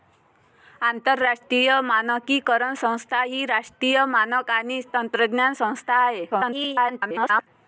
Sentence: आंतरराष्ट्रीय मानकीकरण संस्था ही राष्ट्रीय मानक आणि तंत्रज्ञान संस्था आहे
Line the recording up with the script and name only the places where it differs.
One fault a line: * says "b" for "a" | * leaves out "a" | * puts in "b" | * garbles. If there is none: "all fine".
* garbles